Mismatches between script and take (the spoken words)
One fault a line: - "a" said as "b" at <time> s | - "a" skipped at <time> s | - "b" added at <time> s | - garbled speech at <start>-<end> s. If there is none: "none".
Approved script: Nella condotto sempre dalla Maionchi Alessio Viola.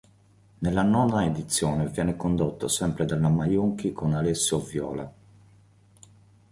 - "nona edizione viene" added at 0.8 s
- "con" added at 3.9 s